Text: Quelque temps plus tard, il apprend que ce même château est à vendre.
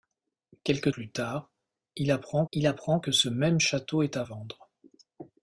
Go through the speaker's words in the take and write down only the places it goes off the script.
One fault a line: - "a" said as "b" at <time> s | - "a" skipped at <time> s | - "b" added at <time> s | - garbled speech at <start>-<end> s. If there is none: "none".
- "temps" skipped at 0.9 s
- "il apprend" added at 2.5 s